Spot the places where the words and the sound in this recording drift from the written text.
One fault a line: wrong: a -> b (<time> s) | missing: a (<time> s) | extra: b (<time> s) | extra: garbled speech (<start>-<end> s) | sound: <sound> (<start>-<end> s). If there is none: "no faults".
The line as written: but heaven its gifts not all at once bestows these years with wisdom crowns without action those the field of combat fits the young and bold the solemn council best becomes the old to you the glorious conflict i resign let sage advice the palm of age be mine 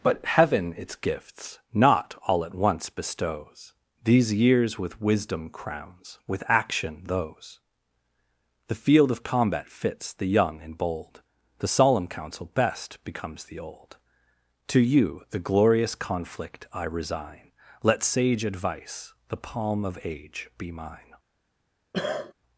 wrong: without -> with (6.3 s)
sound: cough (21.9-22.3 s)